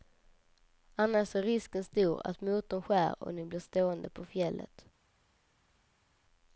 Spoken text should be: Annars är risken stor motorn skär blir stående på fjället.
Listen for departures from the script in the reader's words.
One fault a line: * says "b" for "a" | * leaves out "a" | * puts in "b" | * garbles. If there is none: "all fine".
* puts in "att"
* puts in "och ni"